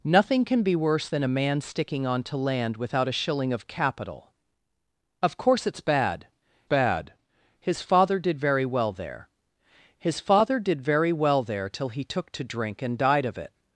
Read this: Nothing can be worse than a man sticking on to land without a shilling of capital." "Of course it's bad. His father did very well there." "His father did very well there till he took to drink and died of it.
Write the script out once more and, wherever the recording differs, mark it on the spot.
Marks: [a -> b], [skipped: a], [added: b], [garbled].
Nothing can be worse than a man sticking on to land without a shilling of capital." "Of course it's bad. [added: bad] His father did very well there." "His father did very well there till he took to drink and died of it.